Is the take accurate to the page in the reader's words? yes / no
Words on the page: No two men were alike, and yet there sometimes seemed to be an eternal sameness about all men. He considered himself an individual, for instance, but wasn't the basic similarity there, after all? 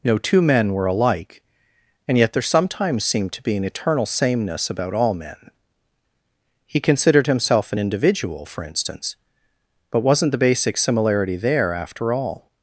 yes